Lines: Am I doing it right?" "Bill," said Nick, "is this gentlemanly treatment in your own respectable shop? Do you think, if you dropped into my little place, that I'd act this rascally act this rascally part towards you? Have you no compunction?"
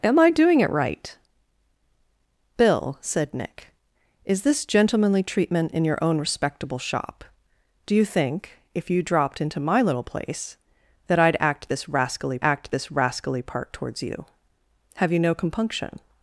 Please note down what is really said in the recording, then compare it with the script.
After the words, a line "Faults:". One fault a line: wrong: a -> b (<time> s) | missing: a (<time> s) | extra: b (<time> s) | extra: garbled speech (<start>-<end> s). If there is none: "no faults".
Am I doing it right?" "Bill," said Nick, "is this gentlemanly treatment in your own respectable shop? Do you think, if you dropped into my little place, that I'd act this rascally act this rascally part towards you? Have you no compunction?"
Faults:
no faults